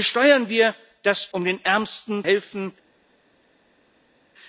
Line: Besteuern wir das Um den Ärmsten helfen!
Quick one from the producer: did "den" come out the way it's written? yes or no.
yes